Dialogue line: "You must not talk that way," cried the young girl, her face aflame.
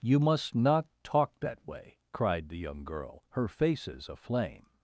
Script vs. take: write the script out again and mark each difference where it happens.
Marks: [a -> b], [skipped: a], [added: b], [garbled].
"You must not talk that way," cried the young girl, her [face -> faces] aflame.